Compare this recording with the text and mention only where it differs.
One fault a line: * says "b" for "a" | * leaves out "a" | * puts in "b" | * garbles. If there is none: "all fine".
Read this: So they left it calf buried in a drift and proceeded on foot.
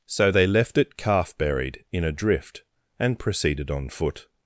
all fine